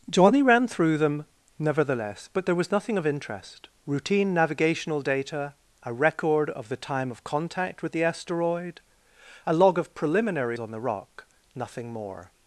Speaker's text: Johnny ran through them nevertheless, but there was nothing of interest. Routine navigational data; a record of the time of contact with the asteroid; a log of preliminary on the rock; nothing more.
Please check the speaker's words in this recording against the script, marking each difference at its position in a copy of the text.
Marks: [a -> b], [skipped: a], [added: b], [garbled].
Johnny ran through them nevertheless, but there was nothing of interest. Routine navigational data; a record of the time of contact with the asteroid; a log of preliminary on the rock; nothing more.